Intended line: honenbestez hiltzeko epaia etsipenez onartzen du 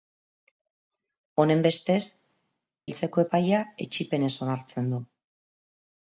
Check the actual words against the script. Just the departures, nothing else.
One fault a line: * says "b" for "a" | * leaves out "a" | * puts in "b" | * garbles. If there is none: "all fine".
all fine